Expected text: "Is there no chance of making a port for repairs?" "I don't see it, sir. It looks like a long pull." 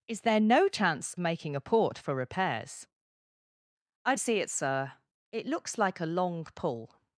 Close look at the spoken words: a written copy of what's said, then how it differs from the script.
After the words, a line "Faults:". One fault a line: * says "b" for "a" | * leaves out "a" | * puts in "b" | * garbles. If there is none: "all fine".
"Is there no chance making a port for repairs?" "I see it, sir. It looks like a long pull."
Faults:
* leaves out "of"
* leaves out "don't"